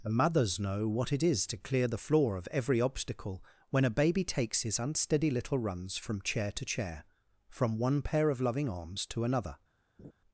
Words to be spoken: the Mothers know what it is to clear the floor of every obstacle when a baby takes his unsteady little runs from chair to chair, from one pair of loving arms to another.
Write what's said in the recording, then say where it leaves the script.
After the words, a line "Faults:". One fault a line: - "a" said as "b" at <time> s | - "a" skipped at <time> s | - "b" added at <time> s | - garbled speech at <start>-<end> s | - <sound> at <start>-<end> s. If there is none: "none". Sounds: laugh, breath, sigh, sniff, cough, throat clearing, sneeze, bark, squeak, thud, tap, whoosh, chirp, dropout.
the Mothers know what it is to clear the floor of every obstacle when a baby takes his unsteady little runs from chair to chair, from one pair of loving arms to another.
Faults:
- laugh at 10.0-10.1 s